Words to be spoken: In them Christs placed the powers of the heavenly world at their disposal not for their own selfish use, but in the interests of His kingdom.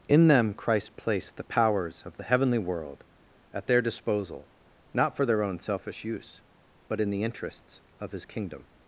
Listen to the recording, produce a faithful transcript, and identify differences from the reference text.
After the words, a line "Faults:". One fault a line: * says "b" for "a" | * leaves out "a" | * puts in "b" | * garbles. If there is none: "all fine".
In them Christ placed the powers of the heavenly world at their disposal not for their own selfish use, but in the interests of His kingdom.
Faults:
* says "Christ" for "Christs"